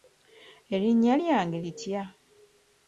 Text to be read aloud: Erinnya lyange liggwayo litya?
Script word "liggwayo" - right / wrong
wrong